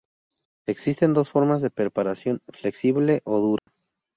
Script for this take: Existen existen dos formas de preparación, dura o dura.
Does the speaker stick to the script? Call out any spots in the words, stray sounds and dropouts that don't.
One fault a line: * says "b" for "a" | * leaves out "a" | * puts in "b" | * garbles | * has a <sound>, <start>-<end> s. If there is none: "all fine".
* leaves out "existen"
* says "flexible" for "dura"
* has a dropout, 3.6-3.7 s